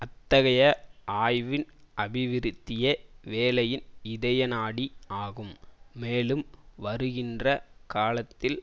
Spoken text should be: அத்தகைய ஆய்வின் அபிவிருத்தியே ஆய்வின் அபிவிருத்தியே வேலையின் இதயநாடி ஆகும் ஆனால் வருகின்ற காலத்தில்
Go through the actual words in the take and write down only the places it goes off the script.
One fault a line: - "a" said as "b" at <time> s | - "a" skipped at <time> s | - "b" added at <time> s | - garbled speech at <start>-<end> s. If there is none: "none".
- "ஆய்வின் அபிவிருத்தியே" skipped at 2.9 s
- "ஆனால்" said as "மேலும்" at 6.0 s